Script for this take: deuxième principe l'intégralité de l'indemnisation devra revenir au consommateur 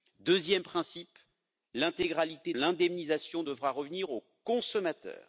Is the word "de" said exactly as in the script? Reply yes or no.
no